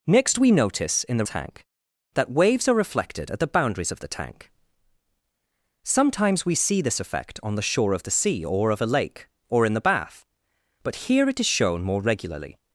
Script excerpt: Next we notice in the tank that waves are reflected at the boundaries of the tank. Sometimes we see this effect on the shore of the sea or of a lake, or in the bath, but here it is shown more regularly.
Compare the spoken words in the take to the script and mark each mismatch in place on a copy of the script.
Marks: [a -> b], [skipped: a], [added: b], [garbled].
Next we notice in the tank that waves are reflected at the boundaries of the tank. Sometimes we see this effect on the shore of the sea or of a lake, or in the bath, but here it is shown more regularly.